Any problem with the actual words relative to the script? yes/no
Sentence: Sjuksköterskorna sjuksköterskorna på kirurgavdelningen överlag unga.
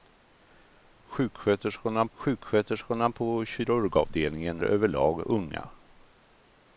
no